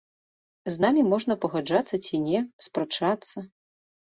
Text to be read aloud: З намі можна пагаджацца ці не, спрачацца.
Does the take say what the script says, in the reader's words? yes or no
yes